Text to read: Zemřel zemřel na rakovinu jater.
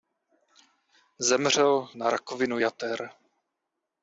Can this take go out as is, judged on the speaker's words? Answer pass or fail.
fail